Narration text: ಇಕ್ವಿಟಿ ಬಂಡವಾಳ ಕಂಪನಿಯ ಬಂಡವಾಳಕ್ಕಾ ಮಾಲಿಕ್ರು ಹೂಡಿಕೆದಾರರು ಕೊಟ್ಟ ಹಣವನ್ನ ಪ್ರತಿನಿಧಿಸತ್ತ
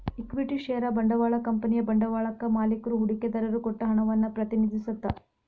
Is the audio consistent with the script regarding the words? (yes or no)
no